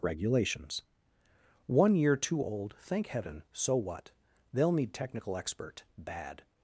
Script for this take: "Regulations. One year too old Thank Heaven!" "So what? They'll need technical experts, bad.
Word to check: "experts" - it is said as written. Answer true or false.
false